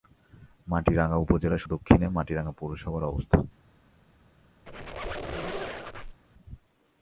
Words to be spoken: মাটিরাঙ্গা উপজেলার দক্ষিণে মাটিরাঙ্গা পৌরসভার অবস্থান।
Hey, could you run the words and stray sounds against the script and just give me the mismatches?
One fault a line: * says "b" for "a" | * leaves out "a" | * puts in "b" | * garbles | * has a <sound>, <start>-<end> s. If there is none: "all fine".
* has a squeak, 4.7-6.2 s